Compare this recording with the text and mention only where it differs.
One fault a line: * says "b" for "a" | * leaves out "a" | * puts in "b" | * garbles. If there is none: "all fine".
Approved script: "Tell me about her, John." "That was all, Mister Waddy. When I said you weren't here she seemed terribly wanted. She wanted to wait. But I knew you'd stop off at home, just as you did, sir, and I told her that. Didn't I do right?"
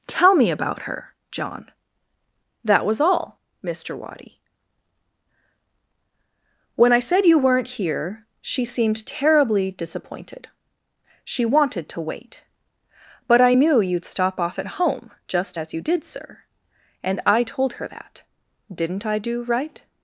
* says "disappointed" for "wanted"